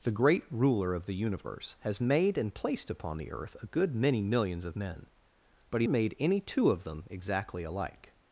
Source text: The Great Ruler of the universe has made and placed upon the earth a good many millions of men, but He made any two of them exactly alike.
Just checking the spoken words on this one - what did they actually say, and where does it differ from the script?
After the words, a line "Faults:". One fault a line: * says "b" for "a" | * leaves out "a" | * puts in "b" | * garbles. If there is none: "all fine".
The Great Ruler of the universe has made and placed upon the earth a good many millions of men, but He made any two of them exactly alike.
Faults:
all fine